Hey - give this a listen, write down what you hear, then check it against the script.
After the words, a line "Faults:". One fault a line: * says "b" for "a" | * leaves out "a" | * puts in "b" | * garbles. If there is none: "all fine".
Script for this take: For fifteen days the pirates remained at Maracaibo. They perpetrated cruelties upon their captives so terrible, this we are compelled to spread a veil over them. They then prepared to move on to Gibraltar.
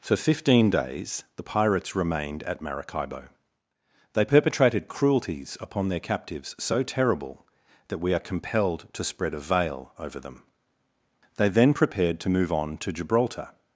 For fifteen days the pirates remained at Maracaibo. They perpetrated cruelties upon their captives so terrible, that we are compelled to spread a veil over them. They then prepared to move on to Gibraltar.
Faults:
* says "that" for "this"